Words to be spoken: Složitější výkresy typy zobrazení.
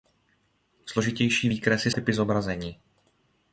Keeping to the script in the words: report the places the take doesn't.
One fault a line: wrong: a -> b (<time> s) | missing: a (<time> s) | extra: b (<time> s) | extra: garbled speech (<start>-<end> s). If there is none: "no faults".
no faults